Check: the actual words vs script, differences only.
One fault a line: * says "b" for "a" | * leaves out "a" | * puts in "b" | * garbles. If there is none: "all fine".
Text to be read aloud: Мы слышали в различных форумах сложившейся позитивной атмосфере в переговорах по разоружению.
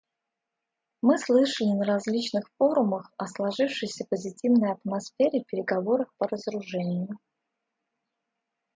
* says "на" for "в"
* puts in "о"